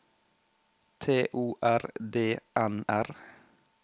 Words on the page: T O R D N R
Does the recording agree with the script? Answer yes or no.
yes